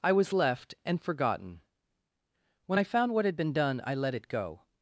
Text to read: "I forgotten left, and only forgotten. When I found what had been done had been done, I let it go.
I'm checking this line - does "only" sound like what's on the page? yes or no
no